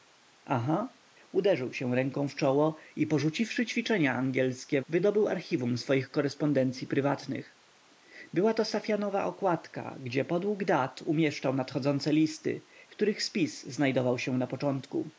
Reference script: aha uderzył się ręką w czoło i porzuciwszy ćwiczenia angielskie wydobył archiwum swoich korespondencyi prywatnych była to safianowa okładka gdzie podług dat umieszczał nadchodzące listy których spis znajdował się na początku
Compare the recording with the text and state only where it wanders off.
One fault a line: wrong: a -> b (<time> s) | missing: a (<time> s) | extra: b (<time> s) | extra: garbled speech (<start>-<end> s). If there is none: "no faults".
no faults